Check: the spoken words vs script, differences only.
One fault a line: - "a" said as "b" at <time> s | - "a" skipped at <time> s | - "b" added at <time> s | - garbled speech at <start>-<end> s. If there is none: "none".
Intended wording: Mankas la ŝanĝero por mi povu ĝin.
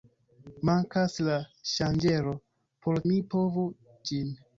none